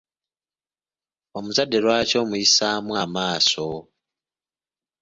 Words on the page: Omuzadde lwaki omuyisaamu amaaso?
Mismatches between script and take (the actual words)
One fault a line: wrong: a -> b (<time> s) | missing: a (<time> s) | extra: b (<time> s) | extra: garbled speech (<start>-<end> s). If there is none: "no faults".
no faults